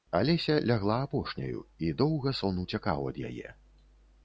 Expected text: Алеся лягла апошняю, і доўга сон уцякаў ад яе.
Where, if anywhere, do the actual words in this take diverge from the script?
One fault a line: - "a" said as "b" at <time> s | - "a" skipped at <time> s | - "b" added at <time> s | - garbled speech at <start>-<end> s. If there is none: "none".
none